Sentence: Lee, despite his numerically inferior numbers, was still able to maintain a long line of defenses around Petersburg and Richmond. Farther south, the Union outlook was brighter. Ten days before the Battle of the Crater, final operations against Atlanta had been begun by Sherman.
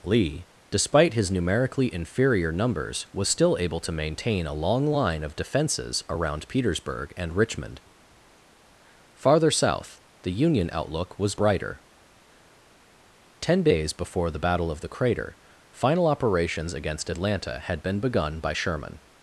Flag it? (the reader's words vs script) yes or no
no